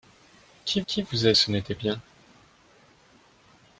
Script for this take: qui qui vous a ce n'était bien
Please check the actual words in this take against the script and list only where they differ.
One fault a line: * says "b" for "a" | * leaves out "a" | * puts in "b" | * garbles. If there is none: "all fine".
all fine